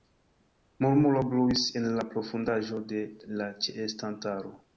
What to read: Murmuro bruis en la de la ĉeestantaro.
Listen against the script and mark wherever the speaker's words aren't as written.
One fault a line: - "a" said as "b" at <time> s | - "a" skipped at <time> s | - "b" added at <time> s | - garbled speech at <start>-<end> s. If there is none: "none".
- "profundaĵo" added at 2.1 s